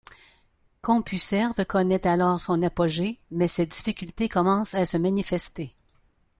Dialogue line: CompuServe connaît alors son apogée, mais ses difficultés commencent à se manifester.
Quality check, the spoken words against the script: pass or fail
pass